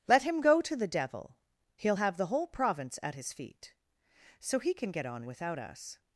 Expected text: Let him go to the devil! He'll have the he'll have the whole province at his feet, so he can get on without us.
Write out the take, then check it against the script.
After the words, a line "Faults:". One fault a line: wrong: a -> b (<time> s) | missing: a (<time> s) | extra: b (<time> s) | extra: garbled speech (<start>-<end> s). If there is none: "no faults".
Let him go to the devil! He'll have the whole province at his feet, so he can get on without us.
Faults:
missing: he'll have the (2.3 s)